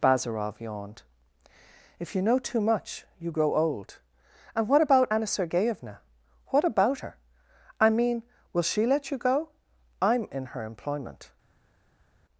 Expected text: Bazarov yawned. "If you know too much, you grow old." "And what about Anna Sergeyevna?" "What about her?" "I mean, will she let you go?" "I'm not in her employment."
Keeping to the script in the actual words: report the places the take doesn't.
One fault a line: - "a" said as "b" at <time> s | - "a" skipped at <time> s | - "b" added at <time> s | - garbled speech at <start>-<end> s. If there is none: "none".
- "not" skipped at 10.3 s